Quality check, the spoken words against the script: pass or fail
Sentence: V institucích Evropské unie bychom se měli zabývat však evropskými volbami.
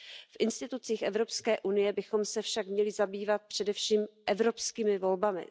fail